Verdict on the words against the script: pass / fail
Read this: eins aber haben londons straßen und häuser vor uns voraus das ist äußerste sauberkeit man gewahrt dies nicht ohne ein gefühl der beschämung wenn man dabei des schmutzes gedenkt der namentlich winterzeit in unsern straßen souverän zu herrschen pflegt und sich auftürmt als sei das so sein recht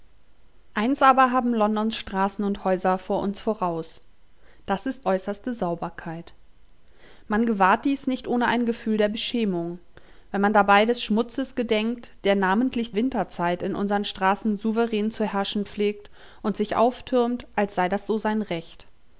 pass